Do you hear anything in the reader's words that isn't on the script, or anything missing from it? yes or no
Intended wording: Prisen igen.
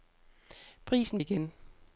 no